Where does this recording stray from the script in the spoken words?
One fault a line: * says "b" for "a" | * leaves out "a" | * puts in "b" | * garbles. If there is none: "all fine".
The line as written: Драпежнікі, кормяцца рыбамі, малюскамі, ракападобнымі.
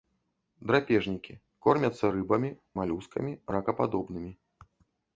all fine